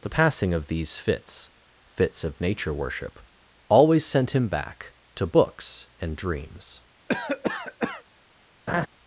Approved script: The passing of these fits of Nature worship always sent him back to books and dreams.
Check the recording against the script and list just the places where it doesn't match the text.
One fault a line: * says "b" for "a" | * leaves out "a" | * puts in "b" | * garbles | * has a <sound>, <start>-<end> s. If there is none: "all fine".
* puts in "fits"
* has a cough, 7.1-8.0 s
* has a laugh, 8.7-8.9 s